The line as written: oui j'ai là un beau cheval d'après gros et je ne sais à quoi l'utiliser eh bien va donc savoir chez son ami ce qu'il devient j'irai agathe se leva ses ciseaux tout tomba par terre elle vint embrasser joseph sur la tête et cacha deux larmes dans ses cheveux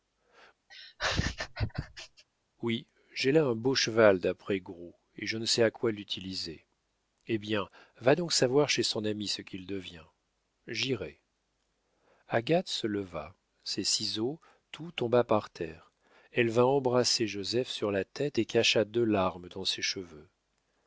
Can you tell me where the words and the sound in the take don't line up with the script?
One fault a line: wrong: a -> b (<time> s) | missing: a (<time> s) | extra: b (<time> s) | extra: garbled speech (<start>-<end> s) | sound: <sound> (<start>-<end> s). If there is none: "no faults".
sound: laugh (0.7-2.2 s)